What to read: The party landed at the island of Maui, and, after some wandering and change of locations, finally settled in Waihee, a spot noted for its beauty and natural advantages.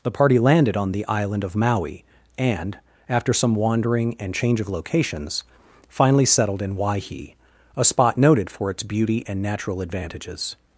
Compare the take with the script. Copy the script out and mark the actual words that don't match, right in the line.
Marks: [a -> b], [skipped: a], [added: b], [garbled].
The party landed [at -> on] the island of Maui, and, after some wandering and change of locations, finally settled in Waihee, a spot noted for its beauty and natural advantages.